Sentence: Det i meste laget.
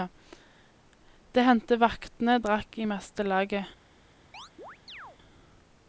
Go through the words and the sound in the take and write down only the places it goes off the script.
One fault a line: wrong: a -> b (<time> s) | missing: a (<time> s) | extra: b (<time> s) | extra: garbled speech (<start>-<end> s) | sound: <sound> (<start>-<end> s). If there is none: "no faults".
extra: hendte vaktene drakk (1.5 s)
sound: chirp (4.3-5.2 s)